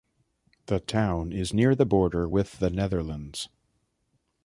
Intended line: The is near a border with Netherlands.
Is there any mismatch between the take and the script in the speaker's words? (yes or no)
yes